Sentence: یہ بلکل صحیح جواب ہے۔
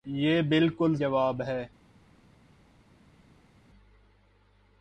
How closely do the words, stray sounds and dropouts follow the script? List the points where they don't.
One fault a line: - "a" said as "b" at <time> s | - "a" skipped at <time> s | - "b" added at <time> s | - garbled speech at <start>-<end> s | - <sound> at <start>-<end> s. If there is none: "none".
- "صحیح" skipped at 0.9 s